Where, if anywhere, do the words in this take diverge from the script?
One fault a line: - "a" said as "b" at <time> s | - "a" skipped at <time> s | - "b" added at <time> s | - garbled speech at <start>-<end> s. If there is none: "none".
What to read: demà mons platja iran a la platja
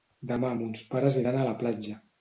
- "platja" said as "pares" at 0.9 s